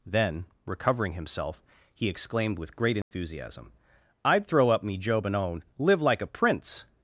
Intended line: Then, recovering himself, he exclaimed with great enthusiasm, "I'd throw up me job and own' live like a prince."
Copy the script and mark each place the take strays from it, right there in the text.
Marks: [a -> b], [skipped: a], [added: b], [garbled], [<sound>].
Then, recovering himself, he exclaimed with great enthusiasm, [dropout] "I'd throw up me job and own' live like a prince."